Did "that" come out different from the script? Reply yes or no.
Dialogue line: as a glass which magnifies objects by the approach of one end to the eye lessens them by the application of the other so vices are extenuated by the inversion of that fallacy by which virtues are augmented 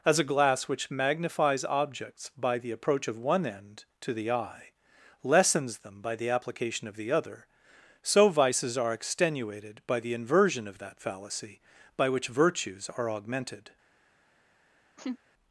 no